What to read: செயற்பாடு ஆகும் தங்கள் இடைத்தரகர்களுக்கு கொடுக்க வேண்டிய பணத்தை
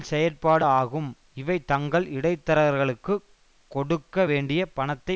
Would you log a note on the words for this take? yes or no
yes